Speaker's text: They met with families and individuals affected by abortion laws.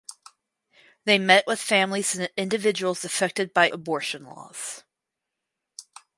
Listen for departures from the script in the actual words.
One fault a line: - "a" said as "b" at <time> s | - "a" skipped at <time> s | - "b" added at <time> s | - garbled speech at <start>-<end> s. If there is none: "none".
none